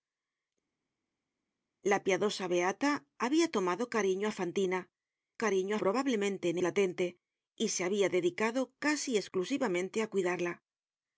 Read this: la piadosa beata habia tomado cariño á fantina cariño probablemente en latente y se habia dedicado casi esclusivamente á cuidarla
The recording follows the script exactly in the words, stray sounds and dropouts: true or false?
true